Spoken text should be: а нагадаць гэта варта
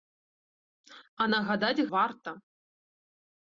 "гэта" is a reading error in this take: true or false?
true